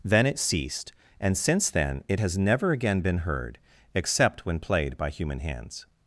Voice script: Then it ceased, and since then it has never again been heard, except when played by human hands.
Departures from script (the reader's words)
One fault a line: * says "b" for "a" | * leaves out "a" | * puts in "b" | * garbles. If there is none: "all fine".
all fine